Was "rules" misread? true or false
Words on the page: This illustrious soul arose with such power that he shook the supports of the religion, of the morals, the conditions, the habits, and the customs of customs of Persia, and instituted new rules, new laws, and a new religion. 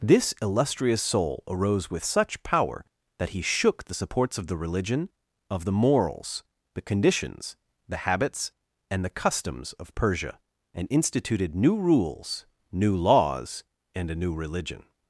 false